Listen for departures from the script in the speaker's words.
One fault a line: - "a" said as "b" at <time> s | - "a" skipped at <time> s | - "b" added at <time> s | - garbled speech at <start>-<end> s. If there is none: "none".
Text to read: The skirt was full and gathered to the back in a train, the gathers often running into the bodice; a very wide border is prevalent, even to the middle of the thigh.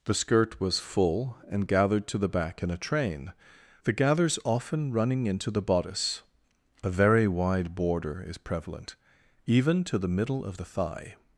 none